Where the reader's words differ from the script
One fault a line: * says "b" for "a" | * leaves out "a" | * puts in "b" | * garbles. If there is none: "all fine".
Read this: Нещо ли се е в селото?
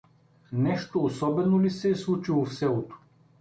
* puts in "особено"
* puts in "случило"